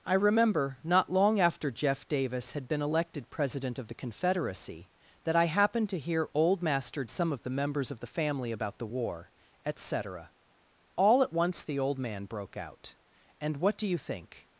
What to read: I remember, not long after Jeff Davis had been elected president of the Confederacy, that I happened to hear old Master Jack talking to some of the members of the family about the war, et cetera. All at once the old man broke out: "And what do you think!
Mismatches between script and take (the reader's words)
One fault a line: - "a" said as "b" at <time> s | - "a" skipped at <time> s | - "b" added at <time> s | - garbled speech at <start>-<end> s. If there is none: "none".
- "Jack talking to" skipped at 7.0 s